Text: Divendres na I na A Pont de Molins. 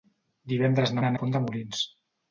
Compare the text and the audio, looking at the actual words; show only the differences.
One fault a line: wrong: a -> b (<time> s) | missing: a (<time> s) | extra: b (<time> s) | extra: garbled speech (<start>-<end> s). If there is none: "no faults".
no faults